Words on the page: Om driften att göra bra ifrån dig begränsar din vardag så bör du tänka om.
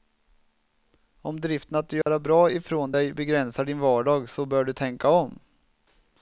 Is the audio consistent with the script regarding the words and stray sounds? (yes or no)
no